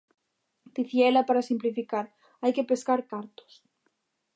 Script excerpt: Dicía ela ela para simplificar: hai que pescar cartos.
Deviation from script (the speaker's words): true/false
true